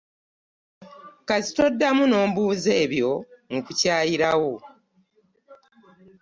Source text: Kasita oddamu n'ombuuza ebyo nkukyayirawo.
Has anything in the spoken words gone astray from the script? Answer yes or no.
no